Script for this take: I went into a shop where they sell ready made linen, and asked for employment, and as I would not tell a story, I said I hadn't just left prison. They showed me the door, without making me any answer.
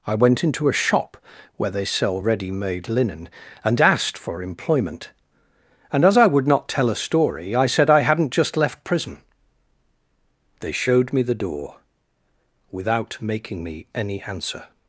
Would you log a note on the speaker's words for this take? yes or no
no